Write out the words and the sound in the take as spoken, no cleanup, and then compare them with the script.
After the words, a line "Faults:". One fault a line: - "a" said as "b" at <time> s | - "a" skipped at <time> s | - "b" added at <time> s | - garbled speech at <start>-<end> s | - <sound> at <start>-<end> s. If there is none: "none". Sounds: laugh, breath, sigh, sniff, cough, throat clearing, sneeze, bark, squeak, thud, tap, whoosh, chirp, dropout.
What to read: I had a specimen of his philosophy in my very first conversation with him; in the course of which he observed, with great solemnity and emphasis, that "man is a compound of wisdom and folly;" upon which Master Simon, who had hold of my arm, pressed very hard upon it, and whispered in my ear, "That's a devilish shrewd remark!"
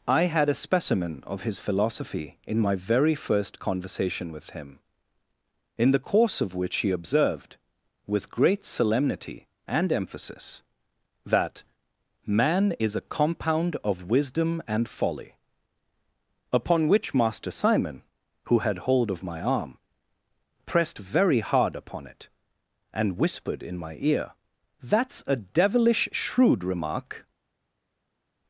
I had a specimen of his philosophy in my very first conversation with him; in the course of which he observed, with great solemnity and emphasis, that "man is a compound of wisdom and folly;" upon which Master Simon, who had hold of my arm, pressed very hard upon it, and whispered in my ear, "That's a devilish shrewd remark!"
Faults:
none